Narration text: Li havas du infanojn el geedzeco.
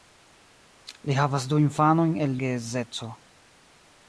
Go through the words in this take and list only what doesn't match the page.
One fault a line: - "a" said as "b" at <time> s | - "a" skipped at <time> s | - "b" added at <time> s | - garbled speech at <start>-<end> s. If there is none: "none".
none